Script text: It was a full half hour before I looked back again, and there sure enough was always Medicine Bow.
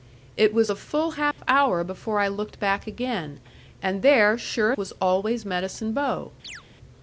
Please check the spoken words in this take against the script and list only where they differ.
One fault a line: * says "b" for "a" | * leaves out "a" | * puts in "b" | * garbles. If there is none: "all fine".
* leaves out "enough"